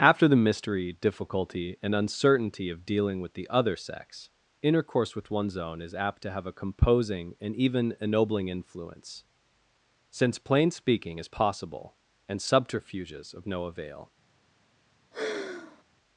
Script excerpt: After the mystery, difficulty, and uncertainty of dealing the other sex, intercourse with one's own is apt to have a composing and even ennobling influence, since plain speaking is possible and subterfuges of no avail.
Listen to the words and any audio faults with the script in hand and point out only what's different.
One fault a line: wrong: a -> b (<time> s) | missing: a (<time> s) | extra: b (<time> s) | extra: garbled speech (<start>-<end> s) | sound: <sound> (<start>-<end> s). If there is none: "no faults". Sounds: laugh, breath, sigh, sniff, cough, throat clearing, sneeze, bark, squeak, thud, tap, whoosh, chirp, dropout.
extra: with (3.2 s)
sound: sigh (15.1-15.8 s)